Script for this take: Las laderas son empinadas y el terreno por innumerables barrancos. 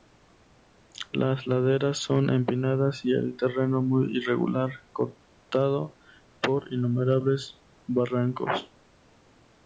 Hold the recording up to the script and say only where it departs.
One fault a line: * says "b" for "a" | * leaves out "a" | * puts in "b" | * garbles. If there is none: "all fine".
* puts in "muy irregular cortado"